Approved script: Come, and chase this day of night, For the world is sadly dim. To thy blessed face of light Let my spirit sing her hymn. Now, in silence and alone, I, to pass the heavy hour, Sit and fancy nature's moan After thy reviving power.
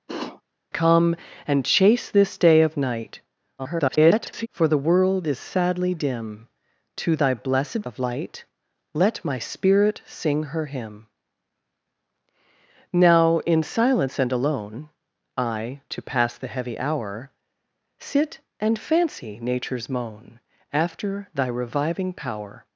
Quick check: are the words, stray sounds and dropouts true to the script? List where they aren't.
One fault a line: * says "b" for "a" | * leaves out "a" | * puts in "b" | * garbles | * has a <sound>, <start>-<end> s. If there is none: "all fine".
* has a sniff, 0.1-0.4 s
* garbles
* leaves out "face"